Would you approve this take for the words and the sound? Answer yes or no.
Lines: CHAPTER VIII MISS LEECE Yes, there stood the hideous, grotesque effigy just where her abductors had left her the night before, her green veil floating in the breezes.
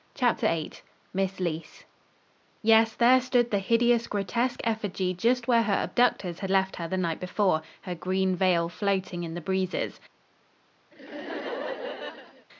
no